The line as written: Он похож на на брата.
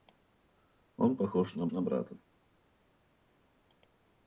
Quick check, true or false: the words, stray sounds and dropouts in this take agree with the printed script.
true